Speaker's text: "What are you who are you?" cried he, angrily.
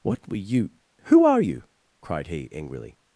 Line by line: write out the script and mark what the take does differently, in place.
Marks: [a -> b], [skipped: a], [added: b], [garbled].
"What [are -> were] you who are you?" cried he, angrily.